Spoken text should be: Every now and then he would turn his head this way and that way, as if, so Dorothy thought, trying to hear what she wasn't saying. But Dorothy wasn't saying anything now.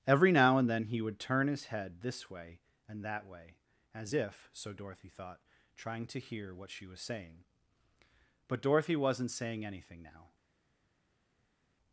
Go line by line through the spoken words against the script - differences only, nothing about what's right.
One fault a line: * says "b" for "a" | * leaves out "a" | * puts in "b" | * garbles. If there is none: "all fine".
* says "was" for "wasn't"